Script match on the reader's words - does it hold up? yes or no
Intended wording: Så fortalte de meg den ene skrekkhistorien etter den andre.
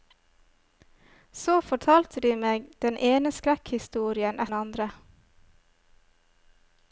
no